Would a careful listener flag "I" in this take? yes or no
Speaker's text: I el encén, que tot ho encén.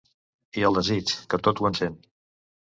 no